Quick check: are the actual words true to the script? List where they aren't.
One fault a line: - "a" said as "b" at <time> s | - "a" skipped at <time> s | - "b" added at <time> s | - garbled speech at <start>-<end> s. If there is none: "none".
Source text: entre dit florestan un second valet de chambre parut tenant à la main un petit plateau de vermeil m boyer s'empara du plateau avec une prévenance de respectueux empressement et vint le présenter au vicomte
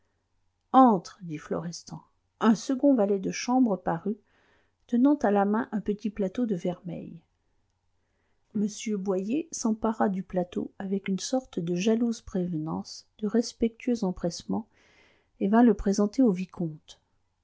- "sorte de jalouse" added at 11.2 s